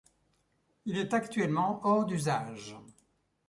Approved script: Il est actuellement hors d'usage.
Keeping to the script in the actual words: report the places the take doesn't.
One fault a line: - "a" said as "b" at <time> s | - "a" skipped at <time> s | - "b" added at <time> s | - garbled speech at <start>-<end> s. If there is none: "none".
none